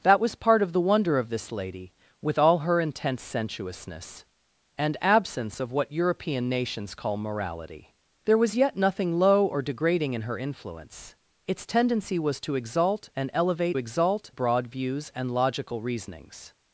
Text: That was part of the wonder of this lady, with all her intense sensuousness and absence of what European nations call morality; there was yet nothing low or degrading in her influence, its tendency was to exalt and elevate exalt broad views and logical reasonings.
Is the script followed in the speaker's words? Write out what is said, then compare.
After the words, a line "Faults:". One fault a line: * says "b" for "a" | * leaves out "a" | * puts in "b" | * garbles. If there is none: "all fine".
That was part of the wonder of this lady, with all her intense sensuousness and absence of what European nations call morality; there was yet nothing low or degrading in her influence, its tendency was to exalt and elevate exalt broad views and logical reasonings.
Faults:
all fine